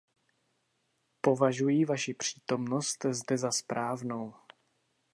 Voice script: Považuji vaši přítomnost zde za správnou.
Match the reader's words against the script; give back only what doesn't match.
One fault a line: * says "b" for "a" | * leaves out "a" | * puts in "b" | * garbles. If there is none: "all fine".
all fine